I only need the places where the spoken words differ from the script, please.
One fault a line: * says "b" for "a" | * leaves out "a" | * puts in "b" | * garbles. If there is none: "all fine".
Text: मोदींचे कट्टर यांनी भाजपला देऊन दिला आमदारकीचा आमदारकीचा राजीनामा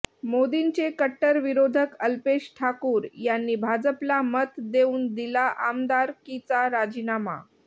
* puts in "विरोधक अल्पेश ठाकूर"
* puts in "मत"
* leaves out "आमदारकीचा"